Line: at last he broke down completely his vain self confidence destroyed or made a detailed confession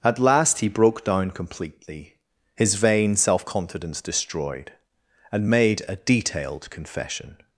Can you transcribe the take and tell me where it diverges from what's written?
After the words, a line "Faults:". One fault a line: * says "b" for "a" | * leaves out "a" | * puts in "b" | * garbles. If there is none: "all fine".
at last he broke down completely his vain self confidence destroyed and made a detailed confession
Faults:
* says "and" for "or"